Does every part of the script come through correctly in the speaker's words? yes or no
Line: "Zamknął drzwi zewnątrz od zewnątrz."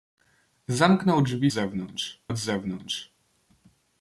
yes